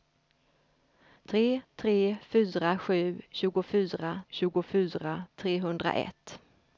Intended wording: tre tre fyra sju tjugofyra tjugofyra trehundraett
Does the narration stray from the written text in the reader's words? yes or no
no